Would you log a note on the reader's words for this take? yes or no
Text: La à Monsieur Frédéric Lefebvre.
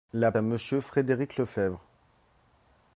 no